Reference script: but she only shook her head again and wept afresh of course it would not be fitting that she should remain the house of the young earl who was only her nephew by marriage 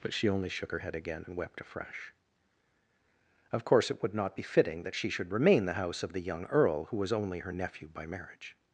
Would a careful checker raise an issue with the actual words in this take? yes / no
no